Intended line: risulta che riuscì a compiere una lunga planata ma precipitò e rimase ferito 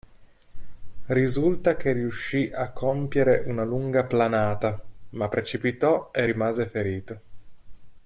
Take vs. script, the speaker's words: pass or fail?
pass